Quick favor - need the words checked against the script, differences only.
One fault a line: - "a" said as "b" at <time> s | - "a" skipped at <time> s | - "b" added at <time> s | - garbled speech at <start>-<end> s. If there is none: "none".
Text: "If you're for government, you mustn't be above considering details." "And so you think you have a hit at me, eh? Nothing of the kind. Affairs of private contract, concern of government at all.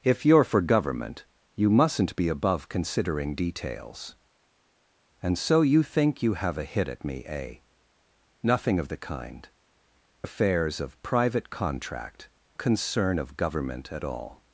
none